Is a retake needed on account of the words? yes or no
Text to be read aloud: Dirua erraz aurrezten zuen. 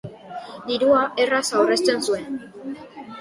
no